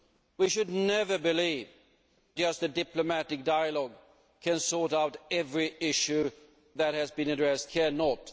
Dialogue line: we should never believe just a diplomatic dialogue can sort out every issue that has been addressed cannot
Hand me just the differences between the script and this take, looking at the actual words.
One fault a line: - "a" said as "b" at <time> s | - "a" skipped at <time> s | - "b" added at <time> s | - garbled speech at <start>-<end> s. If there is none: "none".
none